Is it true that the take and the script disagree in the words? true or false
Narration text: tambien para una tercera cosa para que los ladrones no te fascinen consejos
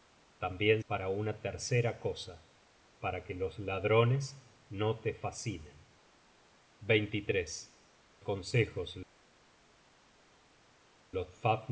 false